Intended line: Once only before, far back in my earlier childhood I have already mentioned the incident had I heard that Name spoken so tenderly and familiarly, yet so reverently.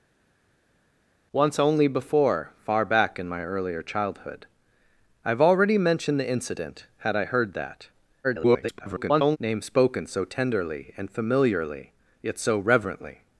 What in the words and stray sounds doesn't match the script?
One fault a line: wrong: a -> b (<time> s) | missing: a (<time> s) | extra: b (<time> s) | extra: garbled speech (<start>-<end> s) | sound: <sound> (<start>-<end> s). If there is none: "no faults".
extra: garbled speech (8.2-9.4 s)